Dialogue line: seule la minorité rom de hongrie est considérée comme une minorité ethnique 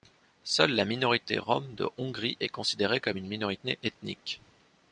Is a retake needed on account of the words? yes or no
no